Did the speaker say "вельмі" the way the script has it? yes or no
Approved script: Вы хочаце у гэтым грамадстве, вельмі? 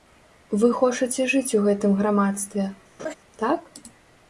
no